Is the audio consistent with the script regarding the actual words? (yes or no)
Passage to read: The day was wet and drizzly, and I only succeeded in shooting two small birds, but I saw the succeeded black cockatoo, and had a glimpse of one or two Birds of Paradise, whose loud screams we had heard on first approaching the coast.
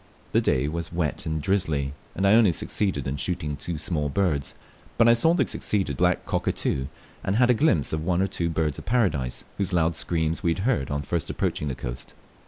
yes